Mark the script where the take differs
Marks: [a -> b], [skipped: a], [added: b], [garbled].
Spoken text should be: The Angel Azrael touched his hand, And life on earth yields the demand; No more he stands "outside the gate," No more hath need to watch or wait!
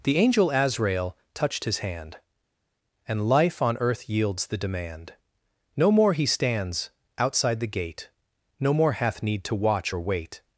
The Angel Azrael touched his hand, And life on earth yields the demand; No more he stands "outside the gate," No more hath need to watch or wait!